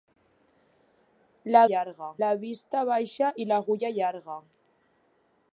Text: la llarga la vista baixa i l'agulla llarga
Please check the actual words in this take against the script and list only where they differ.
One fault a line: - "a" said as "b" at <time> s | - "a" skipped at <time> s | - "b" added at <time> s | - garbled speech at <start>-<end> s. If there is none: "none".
none